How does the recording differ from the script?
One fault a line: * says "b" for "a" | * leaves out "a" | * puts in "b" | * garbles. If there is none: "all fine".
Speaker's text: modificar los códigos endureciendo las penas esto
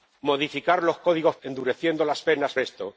all fine